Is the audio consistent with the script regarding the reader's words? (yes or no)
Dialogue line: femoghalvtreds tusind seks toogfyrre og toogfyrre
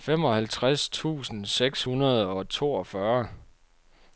no